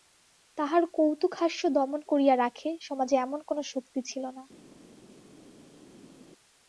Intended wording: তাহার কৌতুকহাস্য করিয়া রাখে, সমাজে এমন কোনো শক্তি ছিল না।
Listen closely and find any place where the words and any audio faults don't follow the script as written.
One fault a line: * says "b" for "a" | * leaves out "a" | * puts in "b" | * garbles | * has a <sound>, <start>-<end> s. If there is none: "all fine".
* puts in "দমন"